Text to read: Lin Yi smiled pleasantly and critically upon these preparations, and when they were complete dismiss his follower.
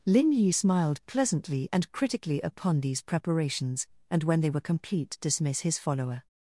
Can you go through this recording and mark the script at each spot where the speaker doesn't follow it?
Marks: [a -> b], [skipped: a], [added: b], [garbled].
Lin Yi smiled pleasantly and critically upon these preparations, and when they were complete dismiss his follower.